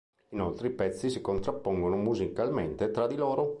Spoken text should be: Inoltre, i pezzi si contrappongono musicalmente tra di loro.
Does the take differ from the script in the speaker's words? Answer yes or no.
no